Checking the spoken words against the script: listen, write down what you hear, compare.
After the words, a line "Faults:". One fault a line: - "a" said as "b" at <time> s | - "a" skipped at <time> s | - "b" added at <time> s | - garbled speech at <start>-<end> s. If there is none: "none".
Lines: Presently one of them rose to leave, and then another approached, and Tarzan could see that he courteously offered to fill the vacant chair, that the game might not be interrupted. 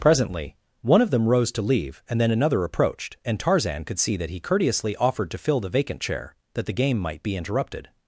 Presently one of them rose to leave, and then another approached, and Tarzan could see that he courteously offered to fill the vacant chair, that the game might be interrupted.
Faults:
- "not" skipped at 7.2 s